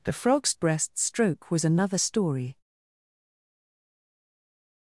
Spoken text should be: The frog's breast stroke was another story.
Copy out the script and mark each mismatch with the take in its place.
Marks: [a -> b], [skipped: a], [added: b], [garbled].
The frog's breast stroke was another story.